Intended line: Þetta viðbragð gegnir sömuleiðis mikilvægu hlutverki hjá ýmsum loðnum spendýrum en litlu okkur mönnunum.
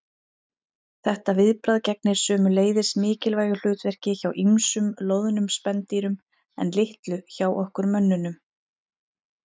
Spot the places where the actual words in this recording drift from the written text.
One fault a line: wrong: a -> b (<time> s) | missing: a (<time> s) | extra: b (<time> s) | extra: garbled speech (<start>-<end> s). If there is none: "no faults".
extra: hjá (7.4 s)